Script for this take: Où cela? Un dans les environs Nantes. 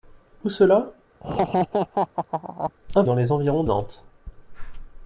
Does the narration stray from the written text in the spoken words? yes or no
no